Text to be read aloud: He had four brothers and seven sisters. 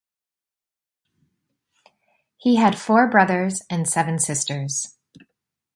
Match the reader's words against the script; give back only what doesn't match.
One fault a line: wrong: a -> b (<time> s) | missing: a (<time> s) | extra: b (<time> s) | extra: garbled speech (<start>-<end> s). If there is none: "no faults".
no faults